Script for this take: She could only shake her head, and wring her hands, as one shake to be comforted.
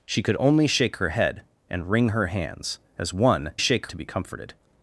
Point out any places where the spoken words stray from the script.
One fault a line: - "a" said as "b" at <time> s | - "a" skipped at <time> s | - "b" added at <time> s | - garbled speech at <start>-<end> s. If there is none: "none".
none